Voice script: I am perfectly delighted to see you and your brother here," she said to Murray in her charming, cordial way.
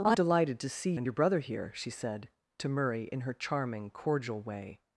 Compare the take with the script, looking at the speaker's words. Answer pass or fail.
fail